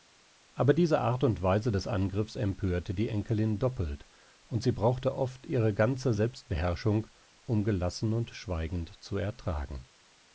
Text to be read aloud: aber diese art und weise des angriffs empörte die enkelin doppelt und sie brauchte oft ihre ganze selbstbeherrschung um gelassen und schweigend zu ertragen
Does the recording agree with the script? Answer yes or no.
yes